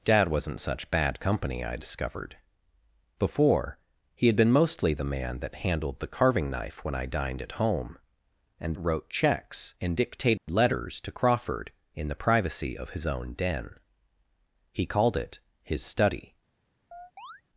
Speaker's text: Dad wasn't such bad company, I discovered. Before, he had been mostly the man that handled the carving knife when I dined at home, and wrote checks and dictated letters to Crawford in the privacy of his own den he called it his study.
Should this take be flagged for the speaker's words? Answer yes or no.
no